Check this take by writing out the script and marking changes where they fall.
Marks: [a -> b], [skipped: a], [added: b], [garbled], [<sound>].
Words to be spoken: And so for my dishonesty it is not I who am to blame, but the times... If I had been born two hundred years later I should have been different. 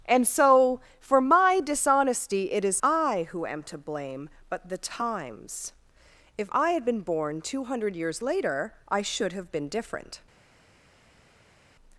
And so for my dishonesty it is [skipped: not] I who am to blame, but the times... If I had been born two hundred years later I should have been different.